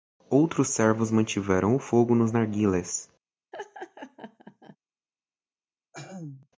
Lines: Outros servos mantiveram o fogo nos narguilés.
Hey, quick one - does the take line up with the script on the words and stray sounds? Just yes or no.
no